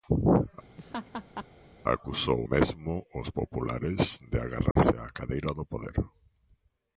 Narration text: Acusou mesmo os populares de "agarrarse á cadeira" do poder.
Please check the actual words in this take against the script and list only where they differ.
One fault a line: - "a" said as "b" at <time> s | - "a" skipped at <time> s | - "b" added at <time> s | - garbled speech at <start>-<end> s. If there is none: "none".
none